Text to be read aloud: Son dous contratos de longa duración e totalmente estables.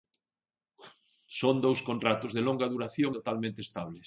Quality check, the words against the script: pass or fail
fail